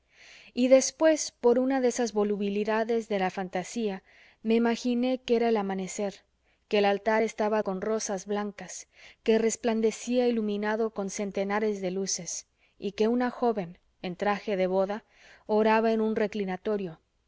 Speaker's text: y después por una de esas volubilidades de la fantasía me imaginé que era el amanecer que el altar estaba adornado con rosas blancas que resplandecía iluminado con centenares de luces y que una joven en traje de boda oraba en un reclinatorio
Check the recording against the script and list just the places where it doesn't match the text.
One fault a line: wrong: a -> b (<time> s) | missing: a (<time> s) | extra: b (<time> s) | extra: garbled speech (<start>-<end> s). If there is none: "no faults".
missing: adornado (7.6 s)